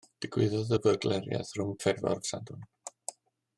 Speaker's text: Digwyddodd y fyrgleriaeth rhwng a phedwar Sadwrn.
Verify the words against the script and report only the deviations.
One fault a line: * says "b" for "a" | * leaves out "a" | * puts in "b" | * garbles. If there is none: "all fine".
all fine